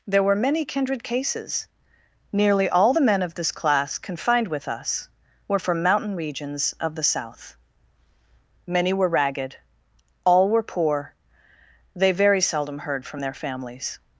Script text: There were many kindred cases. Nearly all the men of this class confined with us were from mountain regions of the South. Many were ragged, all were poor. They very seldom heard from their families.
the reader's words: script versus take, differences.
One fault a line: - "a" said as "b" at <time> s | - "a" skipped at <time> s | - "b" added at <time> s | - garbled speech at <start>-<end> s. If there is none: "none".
none